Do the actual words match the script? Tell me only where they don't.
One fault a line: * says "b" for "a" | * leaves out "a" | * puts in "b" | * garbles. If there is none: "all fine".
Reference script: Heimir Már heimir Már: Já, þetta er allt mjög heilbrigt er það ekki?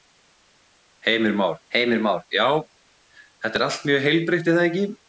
all fine